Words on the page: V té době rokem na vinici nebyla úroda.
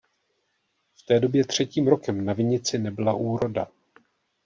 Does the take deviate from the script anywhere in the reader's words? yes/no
yes